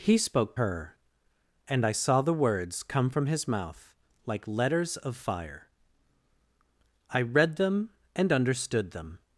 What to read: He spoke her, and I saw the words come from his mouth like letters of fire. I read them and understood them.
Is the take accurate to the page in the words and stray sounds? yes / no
yes